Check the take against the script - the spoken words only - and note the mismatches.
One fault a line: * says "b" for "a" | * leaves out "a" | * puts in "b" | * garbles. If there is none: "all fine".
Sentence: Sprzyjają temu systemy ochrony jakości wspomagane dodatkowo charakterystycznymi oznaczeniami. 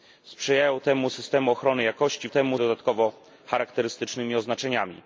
* says "temu" for "wspomagane"